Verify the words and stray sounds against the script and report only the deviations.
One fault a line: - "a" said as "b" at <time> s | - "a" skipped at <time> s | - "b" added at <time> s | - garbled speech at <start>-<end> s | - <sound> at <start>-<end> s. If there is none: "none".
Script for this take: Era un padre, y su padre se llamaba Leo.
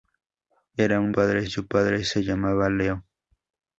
none